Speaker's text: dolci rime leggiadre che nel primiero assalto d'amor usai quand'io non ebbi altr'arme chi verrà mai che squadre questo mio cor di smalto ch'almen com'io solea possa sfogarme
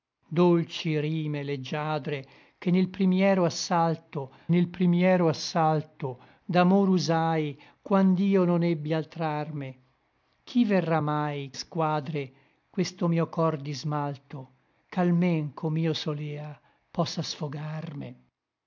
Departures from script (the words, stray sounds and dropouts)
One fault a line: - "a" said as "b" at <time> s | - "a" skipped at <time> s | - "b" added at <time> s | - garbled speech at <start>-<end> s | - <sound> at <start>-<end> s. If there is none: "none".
- "nel primiero assalto" added at 4.5 s
- "che" skipped at 11.5 s